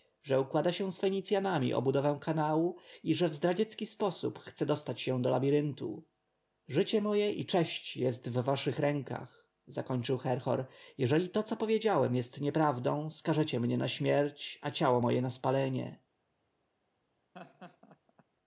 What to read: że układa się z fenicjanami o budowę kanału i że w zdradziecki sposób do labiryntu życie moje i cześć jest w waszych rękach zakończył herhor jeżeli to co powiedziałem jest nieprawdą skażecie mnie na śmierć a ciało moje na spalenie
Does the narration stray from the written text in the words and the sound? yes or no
yes